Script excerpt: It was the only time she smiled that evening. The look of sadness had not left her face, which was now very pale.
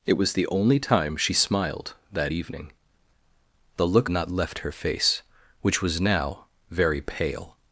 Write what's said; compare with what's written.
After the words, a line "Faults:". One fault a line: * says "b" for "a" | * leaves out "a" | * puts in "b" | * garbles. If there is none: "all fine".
It was the only time she smiled that evening. The look not left her face, which was now very pale.
Faults:
* leaves out "of sadness had"